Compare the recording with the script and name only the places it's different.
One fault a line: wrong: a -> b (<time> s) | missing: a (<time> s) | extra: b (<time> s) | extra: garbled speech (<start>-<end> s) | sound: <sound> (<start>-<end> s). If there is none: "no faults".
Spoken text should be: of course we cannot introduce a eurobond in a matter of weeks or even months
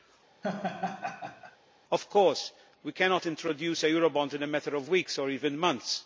sound: laugh (0.4-1.6 s)